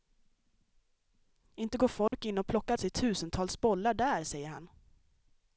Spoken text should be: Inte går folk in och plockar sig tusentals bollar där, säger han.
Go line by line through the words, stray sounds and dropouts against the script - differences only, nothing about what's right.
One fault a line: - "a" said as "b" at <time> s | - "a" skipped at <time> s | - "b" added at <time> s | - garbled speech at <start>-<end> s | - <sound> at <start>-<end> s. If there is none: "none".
- dropout at 2.1-2.1 s